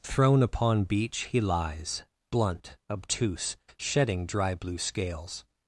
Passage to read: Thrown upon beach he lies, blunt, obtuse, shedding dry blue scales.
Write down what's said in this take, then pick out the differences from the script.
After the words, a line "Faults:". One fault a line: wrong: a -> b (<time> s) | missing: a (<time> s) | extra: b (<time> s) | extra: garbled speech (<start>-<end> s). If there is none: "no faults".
Thrown upon beach he lies, blunt, obtuse, shedding dry blue scales.
Faults:
no faults